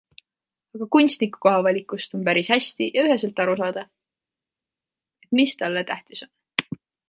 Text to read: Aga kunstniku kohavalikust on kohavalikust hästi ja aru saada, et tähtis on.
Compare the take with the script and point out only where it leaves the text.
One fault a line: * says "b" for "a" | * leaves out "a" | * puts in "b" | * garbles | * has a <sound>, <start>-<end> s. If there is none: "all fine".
* says "päris" for "kohavalikust"
* puts in "üheselt"
* puts in "mis talle"